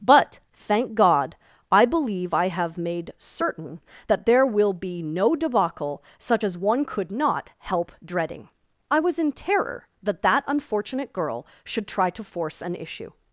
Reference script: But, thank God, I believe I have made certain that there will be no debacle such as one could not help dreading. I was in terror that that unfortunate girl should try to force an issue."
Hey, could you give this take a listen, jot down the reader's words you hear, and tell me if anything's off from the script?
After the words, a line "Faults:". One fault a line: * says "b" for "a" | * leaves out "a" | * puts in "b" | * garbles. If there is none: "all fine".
But, thank God, I believe I have made certain that there will be no debacle such as one could not help dreading. I was in terror that that unfortunate girl should try to force an issue."
Faults:
all fine